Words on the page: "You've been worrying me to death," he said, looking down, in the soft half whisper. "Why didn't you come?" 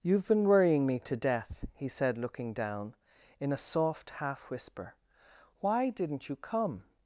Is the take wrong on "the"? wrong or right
wrong